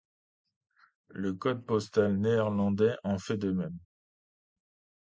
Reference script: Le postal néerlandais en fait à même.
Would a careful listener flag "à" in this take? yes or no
yes